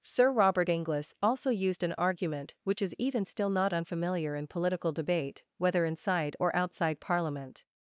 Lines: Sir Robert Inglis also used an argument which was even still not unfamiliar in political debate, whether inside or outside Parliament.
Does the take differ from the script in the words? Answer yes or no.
yes